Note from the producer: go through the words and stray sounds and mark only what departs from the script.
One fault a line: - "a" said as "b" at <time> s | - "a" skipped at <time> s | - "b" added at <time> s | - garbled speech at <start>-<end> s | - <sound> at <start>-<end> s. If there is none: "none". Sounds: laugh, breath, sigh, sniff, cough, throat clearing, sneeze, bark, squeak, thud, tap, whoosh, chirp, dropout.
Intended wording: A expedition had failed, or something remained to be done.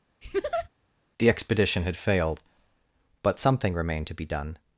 - laugh at 0.2-0.7 s
- "A" said as "The" at 1.2 s
- "or" said as "but" at 3.2 s